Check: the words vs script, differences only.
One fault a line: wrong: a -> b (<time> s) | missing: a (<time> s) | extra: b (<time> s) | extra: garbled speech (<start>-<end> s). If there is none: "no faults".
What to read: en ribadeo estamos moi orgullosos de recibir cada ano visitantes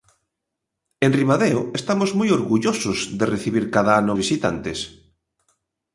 no faults